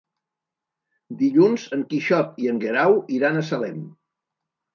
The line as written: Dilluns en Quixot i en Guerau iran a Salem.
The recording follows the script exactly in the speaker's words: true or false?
true